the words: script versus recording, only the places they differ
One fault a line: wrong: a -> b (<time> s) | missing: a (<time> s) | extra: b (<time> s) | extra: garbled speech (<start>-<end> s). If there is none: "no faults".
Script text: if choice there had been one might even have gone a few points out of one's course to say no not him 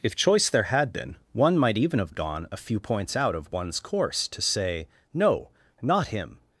no faults